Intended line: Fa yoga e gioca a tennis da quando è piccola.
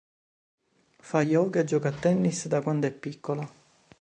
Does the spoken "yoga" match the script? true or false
true